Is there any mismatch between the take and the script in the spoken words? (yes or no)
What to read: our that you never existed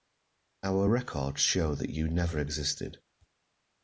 yes